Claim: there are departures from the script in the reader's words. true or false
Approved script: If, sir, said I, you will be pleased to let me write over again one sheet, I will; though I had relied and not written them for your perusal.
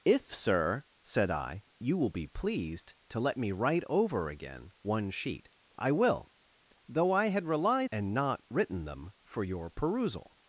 false